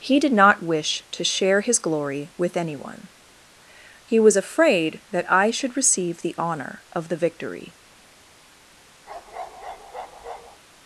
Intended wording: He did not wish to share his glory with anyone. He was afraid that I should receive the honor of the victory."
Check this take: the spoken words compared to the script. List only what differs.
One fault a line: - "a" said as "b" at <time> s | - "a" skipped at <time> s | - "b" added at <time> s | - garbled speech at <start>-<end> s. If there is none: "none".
none